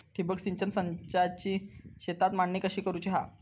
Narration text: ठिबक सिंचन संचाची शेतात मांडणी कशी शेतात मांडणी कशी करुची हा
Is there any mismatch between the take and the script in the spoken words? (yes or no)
yes